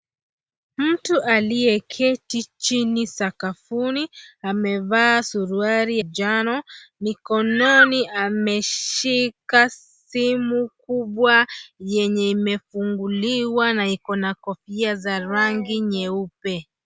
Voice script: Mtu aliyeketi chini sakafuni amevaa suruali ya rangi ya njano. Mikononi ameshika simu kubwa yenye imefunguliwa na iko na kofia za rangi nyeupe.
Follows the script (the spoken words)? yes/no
no